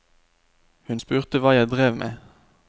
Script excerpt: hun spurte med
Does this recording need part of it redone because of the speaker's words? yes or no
yes